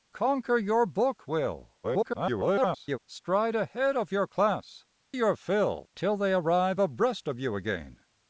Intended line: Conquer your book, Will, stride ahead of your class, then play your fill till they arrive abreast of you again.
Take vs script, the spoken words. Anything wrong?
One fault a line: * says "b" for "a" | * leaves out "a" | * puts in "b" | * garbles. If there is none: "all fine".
* garbles
* leaves out "then play"